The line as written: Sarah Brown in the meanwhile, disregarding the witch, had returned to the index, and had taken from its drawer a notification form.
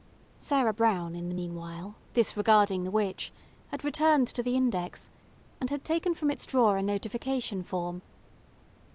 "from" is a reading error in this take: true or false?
false